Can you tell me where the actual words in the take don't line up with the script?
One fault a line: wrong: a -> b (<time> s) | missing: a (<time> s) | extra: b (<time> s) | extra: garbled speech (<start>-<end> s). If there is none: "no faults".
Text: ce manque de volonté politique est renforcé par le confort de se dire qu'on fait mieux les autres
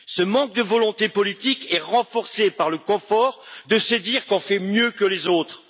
extra: que (4.9 s)